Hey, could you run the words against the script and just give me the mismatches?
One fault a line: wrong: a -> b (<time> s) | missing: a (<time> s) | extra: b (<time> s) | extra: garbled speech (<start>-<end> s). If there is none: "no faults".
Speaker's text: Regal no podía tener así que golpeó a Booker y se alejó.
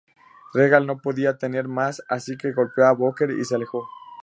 extra: más (1.7 s)